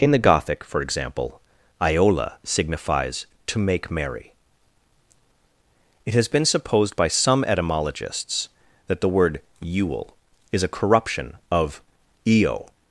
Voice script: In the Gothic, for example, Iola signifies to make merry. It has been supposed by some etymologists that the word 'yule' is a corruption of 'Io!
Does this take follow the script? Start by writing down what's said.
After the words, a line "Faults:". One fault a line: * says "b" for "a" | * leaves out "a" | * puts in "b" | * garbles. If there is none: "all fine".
In the Gothic, for example, Iola signifies to make merry. It has been supposed by some etymologists that the word 'yule' is a corruption of 'Io!
Faults:
all fine